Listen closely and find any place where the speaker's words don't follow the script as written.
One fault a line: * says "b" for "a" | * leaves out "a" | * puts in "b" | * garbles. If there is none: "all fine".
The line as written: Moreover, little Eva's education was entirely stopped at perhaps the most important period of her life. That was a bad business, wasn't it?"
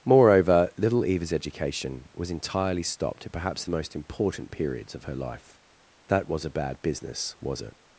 * says "periods" for "period"
* says "was" for "wasn't"